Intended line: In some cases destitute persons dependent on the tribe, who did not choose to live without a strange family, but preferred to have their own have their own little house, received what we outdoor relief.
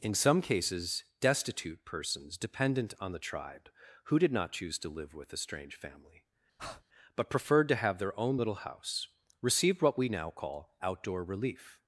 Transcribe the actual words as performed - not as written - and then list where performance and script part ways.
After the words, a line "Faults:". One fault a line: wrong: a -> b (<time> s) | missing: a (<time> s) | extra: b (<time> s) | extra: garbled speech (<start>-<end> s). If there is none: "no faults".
In some cases destitute persons dependent on the tribe, who did not choose to live with a strange family, but preferred to have their own little house, received what we now call outdoor relief.
Faults:
wrong: without -> with (5.1 s)
missing: have their own (8.4 s)
extra: now call (10.1 s)